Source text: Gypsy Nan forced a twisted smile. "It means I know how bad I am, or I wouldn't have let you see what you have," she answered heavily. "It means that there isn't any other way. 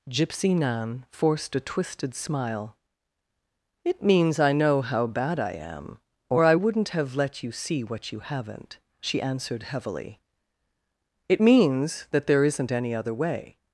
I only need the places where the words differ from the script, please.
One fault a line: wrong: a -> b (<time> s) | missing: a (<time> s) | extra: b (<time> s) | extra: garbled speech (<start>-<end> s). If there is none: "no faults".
wrong: have -> haven't (8.2 s)